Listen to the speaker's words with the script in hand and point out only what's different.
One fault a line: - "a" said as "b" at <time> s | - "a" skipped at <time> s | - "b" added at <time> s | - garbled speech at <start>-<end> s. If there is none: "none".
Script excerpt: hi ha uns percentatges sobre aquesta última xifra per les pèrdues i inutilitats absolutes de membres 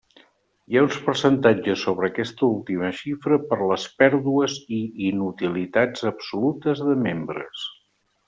none